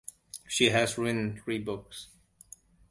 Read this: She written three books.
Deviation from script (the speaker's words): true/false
true